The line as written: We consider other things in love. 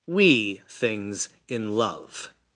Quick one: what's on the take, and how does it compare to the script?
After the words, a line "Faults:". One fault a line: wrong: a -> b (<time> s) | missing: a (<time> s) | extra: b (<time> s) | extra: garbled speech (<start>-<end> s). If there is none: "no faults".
We things in love.
Faults:
missing: consider other (0.6 s)